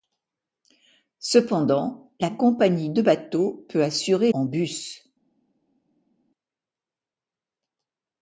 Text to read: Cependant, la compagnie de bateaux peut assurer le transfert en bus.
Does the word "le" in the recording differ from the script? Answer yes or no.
yes